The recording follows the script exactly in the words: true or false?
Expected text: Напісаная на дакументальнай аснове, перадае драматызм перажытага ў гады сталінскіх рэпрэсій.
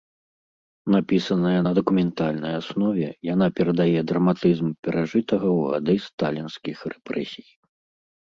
false